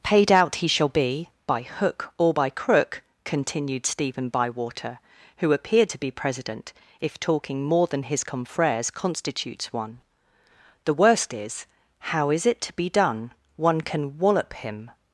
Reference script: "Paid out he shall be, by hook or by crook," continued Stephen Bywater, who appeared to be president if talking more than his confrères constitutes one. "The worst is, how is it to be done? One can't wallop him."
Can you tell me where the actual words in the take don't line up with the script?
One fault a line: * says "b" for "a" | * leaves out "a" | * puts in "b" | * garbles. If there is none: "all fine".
* says "can" for "can't"